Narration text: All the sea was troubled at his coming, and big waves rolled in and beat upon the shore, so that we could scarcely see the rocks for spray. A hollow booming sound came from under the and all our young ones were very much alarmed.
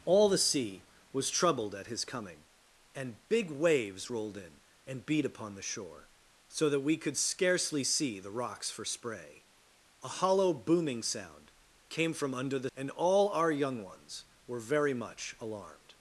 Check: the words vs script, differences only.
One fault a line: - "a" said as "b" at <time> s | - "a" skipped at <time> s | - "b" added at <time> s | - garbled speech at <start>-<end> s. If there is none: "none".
none